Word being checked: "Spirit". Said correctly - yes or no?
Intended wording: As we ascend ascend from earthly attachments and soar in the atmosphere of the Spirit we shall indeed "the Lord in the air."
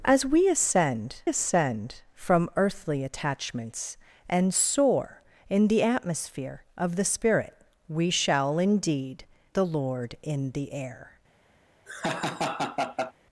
yes